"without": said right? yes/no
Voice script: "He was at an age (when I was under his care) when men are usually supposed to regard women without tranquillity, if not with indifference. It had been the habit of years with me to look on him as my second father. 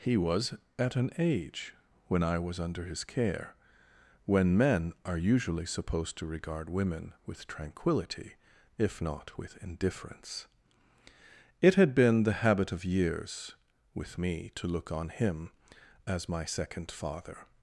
no